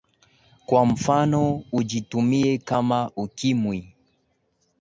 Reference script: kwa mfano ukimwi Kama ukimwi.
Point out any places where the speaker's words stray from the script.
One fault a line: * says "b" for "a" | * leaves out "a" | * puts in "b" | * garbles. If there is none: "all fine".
* says "ujitumie" for "ukimwi"